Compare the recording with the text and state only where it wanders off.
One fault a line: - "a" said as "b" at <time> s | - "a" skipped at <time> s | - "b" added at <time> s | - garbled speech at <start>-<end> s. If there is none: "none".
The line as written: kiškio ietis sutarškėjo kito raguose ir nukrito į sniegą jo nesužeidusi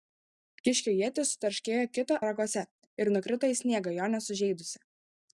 none